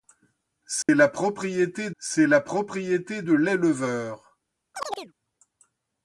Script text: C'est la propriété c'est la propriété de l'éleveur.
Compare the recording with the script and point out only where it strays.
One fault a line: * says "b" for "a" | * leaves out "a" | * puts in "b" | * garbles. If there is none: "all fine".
all fine